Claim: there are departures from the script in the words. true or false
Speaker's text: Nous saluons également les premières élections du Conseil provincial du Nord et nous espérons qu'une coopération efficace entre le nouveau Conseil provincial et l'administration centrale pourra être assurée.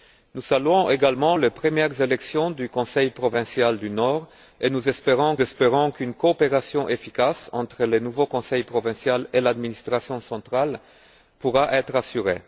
true